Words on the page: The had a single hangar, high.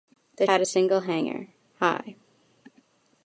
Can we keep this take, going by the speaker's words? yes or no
yes